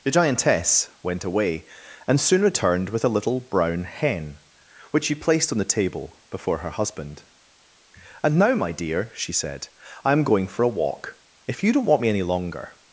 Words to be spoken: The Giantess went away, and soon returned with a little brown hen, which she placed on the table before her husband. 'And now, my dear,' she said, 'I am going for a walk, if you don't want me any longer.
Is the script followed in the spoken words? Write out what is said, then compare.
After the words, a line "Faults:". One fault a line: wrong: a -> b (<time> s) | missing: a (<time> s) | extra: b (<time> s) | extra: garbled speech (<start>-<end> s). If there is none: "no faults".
The Giantess went away, and soon returned with a little brown hen, which she placed on the table before her husband. 'And now, my dear,' she said, 'I am going for a walk, if you don't want me any longer.
Faults:
no faults